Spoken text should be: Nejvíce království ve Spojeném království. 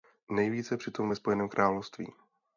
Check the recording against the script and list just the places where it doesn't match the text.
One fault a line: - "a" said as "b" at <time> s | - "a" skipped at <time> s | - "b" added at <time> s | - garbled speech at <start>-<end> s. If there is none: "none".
- "království" said as "přitom" at 0.8 s